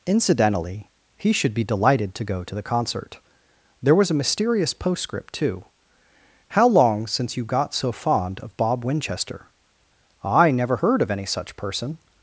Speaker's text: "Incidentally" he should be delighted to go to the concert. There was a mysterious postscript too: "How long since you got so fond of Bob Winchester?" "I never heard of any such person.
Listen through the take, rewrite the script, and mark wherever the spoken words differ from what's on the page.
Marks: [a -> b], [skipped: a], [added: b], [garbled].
"Incidentally" he should be delighted to go to the concert. There was a mysterious postscript too: "How long since you got so fond of Bob Winchester?" "I never heard of any such person.